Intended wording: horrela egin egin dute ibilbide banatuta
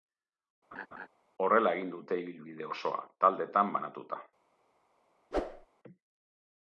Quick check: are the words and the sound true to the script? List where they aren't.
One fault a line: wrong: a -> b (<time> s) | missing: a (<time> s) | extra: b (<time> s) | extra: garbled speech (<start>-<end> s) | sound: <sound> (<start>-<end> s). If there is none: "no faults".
sound: laugh (0.7-1.1 s)
missing: egin (1.9 s)
extra: osoa taldetan (2.7 s)
sound: whoosh (5.3-5.7 s)